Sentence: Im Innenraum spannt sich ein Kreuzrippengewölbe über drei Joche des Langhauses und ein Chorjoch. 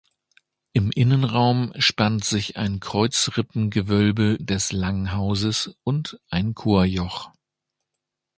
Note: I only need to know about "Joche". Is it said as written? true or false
false